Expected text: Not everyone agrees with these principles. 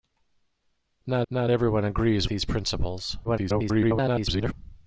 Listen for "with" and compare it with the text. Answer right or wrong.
wrong